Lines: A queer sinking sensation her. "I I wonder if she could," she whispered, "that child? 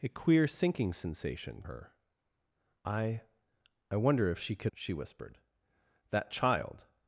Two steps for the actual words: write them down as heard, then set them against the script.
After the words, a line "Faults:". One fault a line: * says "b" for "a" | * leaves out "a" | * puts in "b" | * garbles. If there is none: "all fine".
A queer sinking sensation her. "I I wonder if she could," she whispered, "that child?
Faults:
all fine